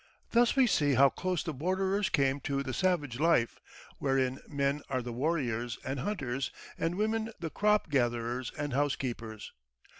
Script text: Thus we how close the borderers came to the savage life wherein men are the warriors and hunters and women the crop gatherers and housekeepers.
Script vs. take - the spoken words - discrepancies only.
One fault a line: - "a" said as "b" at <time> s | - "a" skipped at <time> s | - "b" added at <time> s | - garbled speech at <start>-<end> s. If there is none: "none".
- "see" added at 0.7 s